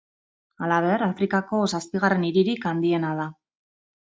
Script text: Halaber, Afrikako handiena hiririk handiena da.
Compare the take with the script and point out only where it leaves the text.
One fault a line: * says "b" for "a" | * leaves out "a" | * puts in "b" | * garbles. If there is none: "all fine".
* says "zazpigarren" for "handiena"